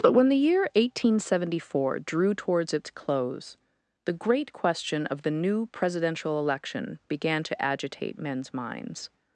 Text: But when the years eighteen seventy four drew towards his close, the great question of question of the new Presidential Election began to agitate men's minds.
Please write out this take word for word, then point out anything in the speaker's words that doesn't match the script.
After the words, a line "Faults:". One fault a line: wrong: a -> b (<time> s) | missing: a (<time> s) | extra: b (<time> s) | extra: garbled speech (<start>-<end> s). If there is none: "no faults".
But when the year eighteen seventy four drew towards its close, the great question of the new Presidential Election began to agitate men's minds.
Faults:
wrong: years -> year (0.4 s)
wrong: his -> its (2.7 s)
missing: question of (5.2 s)